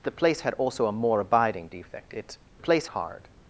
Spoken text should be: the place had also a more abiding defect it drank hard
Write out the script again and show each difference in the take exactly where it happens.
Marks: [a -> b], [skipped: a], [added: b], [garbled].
the place had also a more abiding defect it [drank -> place] hard